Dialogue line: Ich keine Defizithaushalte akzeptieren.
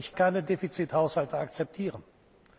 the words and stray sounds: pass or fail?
pass